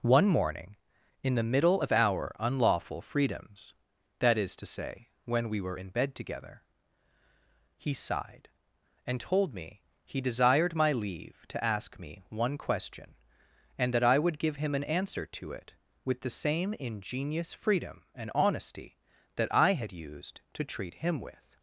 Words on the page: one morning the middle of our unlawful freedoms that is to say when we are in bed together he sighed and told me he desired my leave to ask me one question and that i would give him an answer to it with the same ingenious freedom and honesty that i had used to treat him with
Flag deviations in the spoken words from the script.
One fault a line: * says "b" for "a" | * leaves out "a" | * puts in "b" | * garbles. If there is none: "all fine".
* puts in "in"
* says "were" for "are"